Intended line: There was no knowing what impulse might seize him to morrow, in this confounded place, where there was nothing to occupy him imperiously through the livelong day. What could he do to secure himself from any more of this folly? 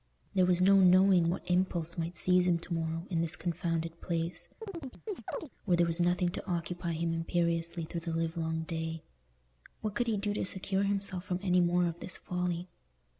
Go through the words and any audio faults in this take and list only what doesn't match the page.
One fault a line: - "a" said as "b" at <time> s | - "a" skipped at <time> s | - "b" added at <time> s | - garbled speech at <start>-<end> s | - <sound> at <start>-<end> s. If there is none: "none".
- chirp at 4.6-5.5 s